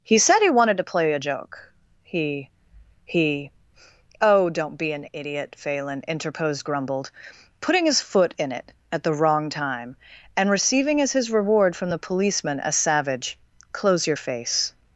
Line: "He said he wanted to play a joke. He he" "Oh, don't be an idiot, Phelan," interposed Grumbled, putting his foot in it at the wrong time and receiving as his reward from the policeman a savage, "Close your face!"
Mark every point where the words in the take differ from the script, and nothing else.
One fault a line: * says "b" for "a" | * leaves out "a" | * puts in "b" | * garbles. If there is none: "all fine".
all fine